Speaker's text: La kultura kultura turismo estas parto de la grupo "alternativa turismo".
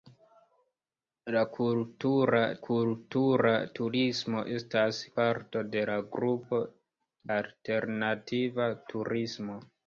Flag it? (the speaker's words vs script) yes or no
no